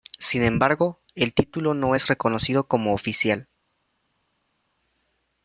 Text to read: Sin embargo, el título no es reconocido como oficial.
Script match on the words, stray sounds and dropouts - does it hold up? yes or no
yes